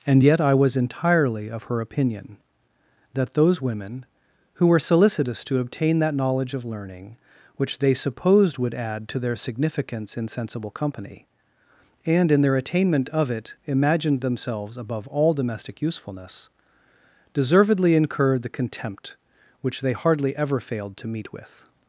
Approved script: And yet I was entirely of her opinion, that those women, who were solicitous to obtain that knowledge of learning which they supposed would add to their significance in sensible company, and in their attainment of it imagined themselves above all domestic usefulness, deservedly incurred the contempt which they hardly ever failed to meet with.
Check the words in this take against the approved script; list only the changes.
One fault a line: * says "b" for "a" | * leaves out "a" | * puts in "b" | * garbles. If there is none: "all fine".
all fine